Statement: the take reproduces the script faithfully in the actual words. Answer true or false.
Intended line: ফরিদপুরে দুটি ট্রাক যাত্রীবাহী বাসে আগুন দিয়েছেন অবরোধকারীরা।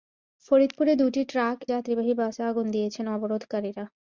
true